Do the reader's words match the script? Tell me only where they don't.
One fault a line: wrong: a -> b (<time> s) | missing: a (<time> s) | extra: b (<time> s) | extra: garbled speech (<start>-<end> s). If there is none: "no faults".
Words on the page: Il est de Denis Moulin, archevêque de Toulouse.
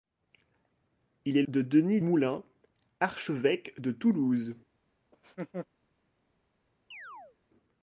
no faults